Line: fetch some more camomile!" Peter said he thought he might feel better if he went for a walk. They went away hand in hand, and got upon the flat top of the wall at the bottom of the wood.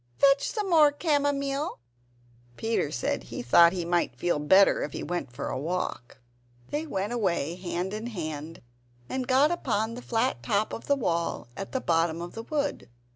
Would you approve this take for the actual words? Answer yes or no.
yes